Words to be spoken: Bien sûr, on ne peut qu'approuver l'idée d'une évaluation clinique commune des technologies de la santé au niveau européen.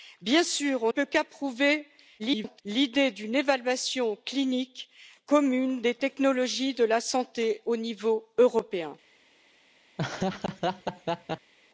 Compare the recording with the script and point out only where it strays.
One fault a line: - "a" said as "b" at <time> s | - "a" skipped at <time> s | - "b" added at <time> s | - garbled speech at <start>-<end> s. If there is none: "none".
- "ne" skipped at 0.9 s
- garbled speech at 2.2-2.6 s